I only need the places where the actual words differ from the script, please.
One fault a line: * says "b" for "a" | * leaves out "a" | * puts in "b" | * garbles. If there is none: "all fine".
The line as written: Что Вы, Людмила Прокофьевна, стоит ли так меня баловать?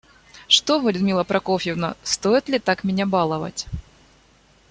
all fine